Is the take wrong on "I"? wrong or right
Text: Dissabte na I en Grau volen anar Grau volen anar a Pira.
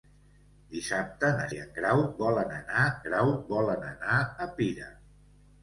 right